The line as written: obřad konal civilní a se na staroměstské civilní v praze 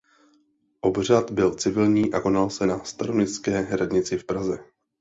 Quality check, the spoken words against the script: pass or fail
fail